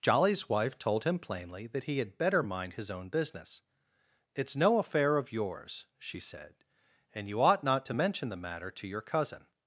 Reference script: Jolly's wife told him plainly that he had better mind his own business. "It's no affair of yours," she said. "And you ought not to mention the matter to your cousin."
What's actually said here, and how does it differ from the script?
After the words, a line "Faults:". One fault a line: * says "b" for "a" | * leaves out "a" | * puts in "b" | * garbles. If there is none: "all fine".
Jolly's wife told him plainly that he had better mind his own business. "It's no affair of yours," she said. "And you ought not to mention the matter to your cousin."
Faults:
all fine